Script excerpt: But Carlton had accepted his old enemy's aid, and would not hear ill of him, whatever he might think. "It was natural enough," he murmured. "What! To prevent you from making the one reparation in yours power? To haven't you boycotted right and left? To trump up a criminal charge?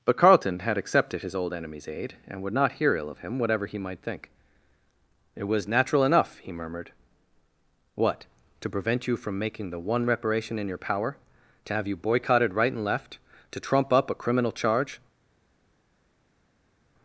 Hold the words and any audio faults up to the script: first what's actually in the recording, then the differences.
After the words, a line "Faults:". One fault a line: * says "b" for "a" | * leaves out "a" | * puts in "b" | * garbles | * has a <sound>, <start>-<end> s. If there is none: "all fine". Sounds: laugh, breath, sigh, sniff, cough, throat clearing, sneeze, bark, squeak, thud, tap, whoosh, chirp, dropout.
But Carlton had accepted his old enemy's aid, and would not hear ill of him, whatever he might think. "It was natural enough," he murmured. "What! To prevent you from making the one reparation in your power? To have you boycotted right and left? To trump up a criminal charge?
Faults:
* says "your" for "yours"
* says "have" for "haven't"